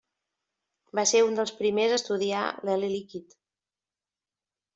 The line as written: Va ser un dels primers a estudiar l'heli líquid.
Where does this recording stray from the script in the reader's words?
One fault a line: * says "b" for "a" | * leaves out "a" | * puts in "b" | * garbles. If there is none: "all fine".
all fine